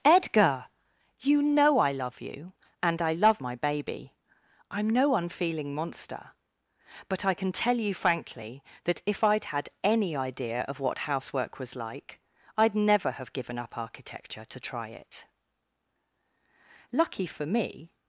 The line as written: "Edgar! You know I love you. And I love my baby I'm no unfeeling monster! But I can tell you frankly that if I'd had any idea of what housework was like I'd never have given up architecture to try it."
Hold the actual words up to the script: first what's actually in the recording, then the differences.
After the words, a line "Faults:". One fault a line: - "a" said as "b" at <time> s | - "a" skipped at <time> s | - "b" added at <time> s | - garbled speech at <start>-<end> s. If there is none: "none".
"Edgar! You know I love you. And I love my baby I'm no unfeeling monster! But I can tell you frankly that if I'd had any idea of what housework was like I'd never have given up architecture to try it." "Lucky for me
Faults:
- "Lucky for me" added at 16.9 s